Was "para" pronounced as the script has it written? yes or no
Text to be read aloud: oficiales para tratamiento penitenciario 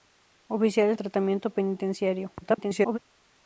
no